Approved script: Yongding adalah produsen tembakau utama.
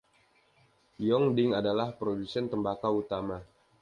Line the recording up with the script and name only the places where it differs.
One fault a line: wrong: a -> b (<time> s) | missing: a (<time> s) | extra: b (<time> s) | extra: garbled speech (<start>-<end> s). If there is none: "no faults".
no faults